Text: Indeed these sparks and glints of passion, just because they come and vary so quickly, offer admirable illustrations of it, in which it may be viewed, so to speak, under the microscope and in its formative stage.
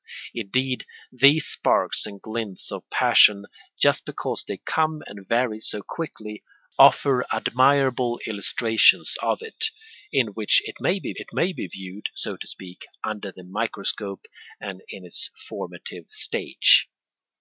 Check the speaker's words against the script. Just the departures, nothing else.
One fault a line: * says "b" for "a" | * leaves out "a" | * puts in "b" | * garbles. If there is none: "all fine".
* puts in "it may be"